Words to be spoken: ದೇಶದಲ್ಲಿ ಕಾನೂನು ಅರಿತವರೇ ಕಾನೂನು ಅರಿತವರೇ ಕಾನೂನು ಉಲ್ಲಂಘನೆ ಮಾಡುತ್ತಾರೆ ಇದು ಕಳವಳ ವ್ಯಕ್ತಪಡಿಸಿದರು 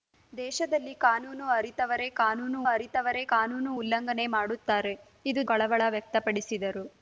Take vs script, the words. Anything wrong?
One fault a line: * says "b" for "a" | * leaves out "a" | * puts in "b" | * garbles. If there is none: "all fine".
all fine